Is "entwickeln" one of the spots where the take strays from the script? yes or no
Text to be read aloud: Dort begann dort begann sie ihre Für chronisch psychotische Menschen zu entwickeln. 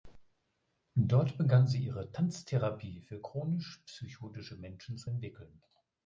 no